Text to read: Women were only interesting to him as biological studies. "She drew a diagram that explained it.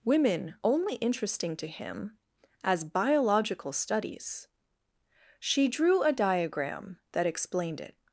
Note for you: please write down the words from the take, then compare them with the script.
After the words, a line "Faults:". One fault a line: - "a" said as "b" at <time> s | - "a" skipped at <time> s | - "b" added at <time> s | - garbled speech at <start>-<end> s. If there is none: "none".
Women only interesting to him as biological studies. "She drew a diagram that explained it.
Faults:
- "were" skipped at 0.6 s